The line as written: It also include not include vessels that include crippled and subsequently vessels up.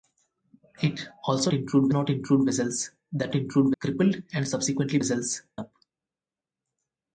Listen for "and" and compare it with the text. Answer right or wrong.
right